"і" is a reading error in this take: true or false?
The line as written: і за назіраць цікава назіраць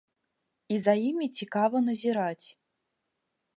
false